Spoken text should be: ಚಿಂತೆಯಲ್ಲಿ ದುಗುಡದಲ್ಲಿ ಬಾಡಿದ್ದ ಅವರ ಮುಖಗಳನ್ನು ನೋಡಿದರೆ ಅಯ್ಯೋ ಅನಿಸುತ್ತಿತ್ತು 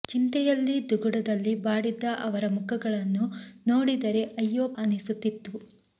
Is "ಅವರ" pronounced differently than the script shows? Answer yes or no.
no